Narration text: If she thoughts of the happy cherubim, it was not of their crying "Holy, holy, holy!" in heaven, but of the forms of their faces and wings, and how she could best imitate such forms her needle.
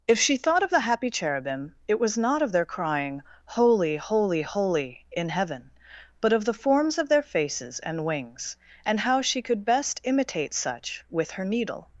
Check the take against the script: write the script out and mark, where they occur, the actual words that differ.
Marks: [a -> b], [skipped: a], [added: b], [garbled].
If she [thoughts -> thought] of the happy cherubim, it was not of their crying "Holy, holy, holy!" in heaven, but of the forms of their faces and wings, and how she could best imitate such [forms -> with] her needle.